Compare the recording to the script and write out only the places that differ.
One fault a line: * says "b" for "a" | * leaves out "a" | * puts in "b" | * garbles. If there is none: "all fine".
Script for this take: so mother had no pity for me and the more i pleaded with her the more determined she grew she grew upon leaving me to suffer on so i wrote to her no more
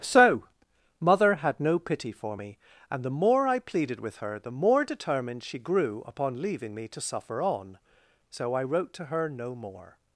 * leaves out "she grew"